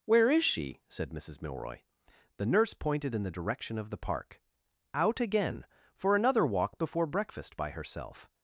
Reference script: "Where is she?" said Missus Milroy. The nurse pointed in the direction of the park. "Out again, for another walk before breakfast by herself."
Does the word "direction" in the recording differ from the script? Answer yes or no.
no